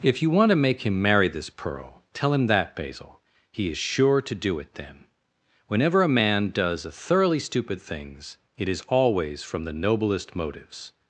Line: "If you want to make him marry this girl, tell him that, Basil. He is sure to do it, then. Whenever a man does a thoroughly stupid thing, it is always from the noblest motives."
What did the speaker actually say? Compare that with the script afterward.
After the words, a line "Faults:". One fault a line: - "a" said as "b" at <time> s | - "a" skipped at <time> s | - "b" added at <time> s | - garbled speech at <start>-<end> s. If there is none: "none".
"If you want to make him marry this pearl, tell him that, Basil. He is sure to do it, then. Whenever a man does a thoroughly stupid things, it is always from the noblest motives."
Faults:
- "girl" said as "pearl" at 1.5 s
- "thing" said as "things" at 7.8 s